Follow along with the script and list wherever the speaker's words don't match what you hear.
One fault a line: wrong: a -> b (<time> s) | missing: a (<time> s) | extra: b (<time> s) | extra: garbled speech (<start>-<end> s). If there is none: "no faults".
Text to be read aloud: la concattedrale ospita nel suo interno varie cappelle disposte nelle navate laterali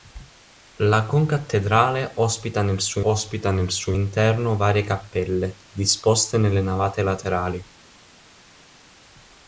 extra: ospita nel suo (3.0 s)